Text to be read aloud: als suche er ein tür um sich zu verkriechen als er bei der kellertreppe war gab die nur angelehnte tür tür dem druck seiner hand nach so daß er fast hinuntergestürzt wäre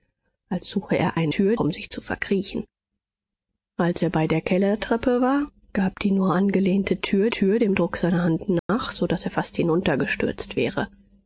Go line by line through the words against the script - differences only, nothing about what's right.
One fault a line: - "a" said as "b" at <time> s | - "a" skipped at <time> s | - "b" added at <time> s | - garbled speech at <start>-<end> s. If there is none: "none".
none